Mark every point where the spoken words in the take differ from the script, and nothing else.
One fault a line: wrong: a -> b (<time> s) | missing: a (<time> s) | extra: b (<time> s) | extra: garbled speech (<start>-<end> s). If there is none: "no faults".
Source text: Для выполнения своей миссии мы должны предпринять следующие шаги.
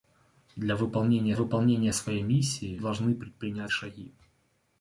extra: выполнения (1.3 s)
missing: мы (2.8 s)
missing: следующие (3.7 s)